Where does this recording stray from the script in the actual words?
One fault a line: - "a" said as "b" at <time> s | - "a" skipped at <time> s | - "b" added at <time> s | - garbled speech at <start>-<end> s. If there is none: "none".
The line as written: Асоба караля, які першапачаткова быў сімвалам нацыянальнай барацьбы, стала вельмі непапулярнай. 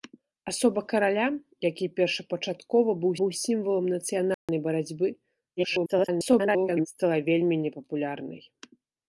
- "быў" added at 3.2 s
- garbled speech at 5.6-6.9 s